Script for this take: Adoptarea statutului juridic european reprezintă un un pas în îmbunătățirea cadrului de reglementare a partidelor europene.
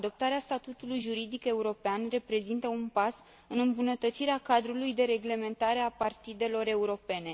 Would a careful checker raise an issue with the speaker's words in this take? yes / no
yes